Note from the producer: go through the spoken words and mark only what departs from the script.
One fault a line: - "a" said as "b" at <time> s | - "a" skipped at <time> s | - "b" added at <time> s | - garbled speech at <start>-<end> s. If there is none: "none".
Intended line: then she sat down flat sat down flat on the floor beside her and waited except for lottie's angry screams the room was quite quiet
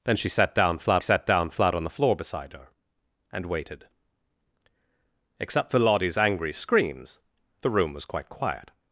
none